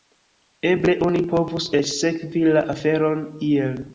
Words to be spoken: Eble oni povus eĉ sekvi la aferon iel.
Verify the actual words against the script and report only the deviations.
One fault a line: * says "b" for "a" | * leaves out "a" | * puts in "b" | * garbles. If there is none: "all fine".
all fine